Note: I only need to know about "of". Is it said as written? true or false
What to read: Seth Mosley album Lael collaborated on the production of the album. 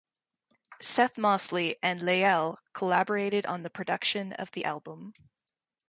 true